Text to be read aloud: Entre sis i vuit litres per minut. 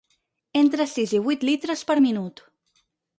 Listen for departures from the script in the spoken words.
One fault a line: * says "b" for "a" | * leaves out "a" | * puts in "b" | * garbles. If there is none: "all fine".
all fine